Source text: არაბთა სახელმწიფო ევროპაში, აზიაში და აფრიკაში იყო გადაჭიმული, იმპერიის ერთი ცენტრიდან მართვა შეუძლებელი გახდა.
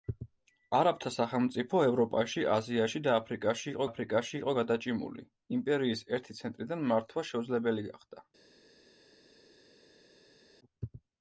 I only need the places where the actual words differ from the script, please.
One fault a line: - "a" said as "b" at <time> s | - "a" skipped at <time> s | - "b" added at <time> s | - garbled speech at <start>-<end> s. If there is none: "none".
- "აფრიკაში იყო" added at 3.9 s